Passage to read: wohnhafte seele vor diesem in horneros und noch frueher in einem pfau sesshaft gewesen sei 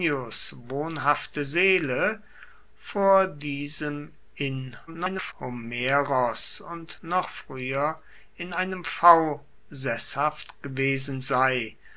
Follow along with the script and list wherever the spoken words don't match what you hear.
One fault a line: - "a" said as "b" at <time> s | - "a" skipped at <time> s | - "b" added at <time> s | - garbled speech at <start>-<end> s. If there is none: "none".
- garbled speech at 4.9-5.3 s